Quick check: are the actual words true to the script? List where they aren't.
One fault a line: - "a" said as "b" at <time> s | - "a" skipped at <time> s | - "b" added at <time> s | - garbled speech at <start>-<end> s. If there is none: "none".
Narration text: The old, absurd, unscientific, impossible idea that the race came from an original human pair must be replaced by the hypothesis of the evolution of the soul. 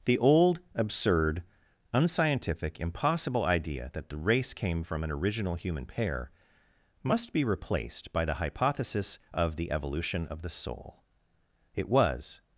- "It was" added at 11.7 s